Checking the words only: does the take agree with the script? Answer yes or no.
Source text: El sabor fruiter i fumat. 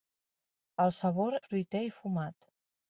yes